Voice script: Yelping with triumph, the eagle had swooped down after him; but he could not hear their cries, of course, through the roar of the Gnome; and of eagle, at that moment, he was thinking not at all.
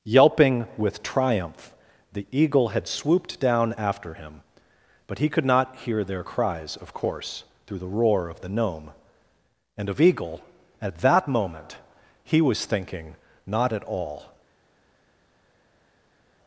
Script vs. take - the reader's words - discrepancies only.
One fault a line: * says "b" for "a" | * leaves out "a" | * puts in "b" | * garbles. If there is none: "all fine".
all fine